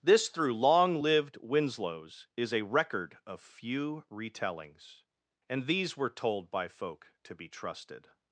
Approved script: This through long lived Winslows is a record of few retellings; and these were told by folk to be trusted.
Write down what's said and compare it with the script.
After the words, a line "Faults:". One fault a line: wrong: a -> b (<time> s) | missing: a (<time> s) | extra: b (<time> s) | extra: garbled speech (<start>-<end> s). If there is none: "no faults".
This through long lived Winslows is a record of few retellings; and these were told by folk to be trusted.
Faults:
no faults